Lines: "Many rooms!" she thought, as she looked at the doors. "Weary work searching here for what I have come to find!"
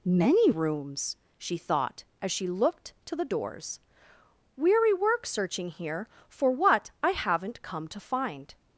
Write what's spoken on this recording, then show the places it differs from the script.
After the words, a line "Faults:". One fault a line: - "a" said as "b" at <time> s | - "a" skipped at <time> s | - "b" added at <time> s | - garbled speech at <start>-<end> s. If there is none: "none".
"Many rooms!" she thought, as she looked to the doors. "Weary work searching here for what I haven't come to find!"
Faults:
- "at" said as "to" at 3.0 s
- "have" said as "haven't" at 7.1 s